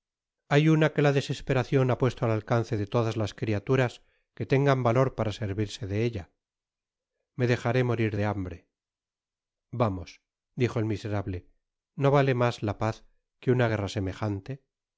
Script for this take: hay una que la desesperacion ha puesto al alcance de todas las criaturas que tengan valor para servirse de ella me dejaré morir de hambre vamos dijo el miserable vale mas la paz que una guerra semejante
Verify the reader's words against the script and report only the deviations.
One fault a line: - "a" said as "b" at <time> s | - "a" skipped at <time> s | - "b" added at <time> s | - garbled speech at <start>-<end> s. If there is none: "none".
- "no" added at 11.9 s